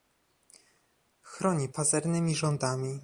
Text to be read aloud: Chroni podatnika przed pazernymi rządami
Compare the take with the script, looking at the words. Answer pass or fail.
fail